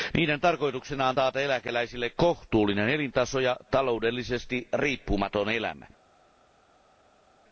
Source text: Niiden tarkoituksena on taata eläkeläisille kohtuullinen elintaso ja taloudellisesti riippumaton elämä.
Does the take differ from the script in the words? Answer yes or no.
no